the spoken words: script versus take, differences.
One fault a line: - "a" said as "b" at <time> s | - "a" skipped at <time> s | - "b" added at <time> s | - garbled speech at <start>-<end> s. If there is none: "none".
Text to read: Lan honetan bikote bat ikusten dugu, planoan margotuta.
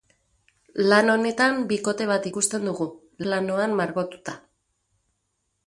none